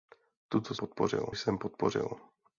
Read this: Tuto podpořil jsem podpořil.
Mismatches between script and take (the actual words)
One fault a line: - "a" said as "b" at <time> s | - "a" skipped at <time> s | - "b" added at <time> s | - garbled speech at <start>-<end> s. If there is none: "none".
none